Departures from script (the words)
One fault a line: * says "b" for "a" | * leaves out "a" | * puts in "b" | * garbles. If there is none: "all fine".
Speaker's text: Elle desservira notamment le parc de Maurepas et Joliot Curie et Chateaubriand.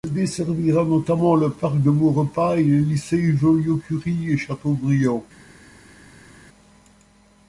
* puts in "les lycées"